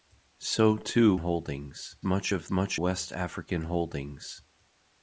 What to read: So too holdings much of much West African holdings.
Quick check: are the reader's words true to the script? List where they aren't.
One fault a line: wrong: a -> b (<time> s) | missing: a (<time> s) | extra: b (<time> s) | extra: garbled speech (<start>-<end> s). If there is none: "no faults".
no faults